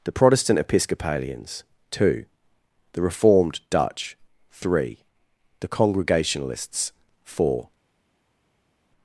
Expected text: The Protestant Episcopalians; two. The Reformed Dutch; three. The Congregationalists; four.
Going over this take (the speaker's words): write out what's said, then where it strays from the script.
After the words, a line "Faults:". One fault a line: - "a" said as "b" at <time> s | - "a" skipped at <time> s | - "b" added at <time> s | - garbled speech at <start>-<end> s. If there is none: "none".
The Protestant Episcopalians; two. The Reformed Dutch; three. The Congregationalists; four.
Faults:
none